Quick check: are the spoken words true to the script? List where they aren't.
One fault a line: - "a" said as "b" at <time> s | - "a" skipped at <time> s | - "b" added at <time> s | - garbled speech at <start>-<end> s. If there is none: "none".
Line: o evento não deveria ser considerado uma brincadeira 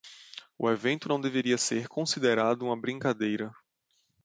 none